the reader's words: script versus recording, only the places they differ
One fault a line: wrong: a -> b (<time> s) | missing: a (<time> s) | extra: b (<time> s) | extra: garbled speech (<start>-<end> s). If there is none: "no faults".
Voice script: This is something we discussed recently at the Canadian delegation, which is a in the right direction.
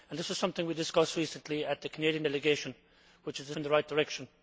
no faults